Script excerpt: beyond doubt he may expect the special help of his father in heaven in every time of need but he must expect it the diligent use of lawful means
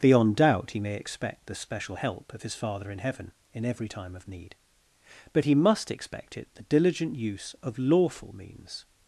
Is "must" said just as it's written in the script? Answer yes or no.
yes